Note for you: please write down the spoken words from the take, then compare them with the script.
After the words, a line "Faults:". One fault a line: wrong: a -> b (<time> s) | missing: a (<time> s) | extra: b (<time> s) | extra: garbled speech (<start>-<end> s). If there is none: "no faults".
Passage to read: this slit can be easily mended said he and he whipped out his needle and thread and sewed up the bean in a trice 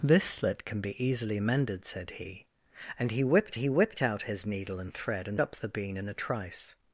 this slit can be easily mended said he and he whipped he whipped out his needle and thread and up the bean in a trice
Faults:
extra: he whipped (3.6 s)
missing: sewed (5.4 s)